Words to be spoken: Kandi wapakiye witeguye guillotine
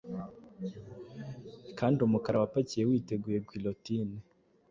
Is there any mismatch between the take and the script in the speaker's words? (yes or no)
yes